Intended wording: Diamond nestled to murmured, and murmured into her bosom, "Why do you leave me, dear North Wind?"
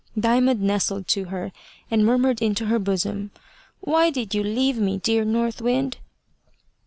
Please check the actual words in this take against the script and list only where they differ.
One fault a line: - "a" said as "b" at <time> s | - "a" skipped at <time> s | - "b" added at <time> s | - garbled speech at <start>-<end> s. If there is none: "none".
- "murmured" said as "her" at 1.2 s
- "do" said as "did" at 4.1 s